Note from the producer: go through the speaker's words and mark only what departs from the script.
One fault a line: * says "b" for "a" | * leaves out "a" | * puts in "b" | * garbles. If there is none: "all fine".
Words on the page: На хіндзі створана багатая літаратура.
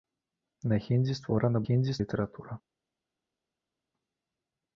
* says "хіндзі" for "багатая"